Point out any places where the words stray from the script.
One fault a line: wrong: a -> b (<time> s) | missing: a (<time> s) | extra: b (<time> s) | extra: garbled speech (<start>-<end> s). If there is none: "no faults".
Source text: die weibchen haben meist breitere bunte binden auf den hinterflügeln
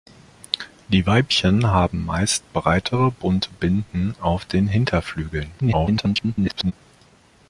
extra: garbled speech (5.6-6.7 s)